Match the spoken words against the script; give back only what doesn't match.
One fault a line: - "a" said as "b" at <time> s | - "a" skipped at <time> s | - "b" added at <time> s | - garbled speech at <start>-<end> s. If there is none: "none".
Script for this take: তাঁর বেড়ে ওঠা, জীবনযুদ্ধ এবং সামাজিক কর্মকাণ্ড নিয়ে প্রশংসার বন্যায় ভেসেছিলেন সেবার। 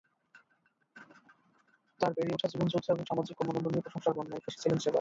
none